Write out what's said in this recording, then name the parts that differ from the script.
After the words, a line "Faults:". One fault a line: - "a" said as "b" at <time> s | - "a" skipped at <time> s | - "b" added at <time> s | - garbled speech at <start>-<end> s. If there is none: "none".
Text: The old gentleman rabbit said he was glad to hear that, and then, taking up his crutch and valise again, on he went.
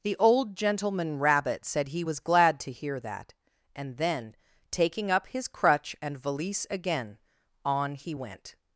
The old gentleman rabbit said he was glad to hear that, and then, taking up his crutch and valise again, on he went.
Faults:
none